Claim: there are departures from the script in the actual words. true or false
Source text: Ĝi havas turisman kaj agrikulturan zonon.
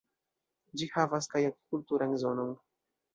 true